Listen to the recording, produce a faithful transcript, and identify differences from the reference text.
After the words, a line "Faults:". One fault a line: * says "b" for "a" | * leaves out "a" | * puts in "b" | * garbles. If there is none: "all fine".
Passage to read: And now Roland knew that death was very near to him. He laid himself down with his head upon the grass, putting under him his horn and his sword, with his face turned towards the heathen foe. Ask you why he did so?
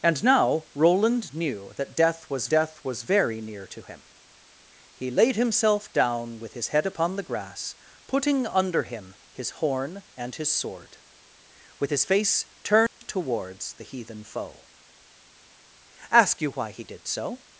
And now Roland knew that death was death was very near to him. He laid himself down with his head upon the grass, putting under him his horn and his sword, with his face turned towards the heathen foe. Ask you why he did so?
Faults:
* puts in "death was"